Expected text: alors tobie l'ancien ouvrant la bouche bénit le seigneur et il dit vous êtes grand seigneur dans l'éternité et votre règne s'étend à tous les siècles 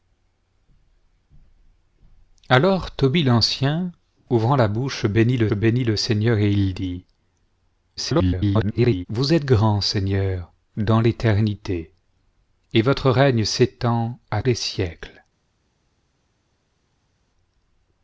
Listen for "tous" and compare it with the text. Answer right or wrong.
wrong